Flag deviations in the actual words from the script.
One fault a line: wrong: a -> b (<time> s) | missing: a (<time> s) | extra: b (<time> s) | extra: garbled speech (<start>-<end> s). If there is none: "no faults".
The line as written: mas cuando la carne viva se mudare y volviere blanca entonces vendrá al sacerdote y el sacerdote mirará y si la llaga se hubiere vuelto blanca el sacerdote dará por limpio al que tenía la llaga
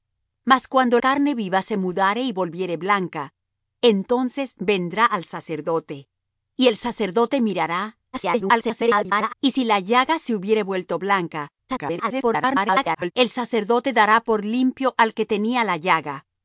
missing: la (1.0 s)
extra: garbled speech (8.1-9.3 s)
extra: garbled speech (11.7-13.1 s)